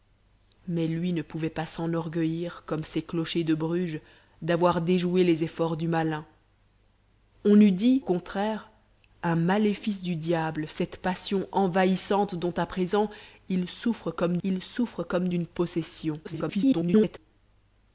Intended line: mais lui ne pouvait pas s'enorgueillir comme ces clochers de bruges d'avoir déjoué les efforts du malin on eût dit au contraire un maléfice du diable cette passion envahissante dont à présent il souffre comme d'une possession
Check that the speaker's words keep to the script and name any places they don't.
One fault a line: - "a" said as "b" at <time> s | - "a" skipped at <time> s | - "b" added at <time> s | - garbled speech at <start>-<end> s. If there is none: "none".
- "au" skipped at 8.0 s
- "il souffre comme" added at 14.4 s
- garbled speech at 16.2-17.2 s